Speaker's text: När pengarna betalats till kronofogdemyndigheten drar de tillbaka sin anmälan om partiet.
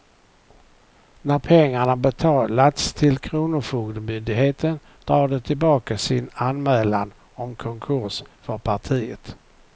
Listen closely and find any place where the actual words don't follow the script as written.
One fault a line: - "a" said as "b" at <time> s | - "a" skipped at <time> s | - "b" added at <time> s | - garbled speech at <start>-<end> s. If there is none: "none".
- "konkurs för" added at 7.5 s